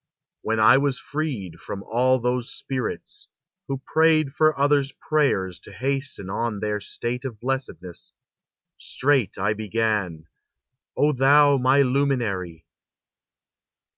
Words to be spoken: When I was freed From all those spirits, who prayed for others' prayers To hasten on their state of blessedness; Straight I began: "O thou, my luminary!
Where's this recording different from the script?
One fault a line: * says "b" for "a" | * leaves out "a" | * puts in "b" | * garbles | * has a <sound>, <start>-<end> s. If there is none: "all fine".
all fine